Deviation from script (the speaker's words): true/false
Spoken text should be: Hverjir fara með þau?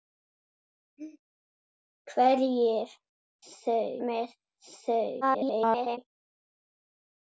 true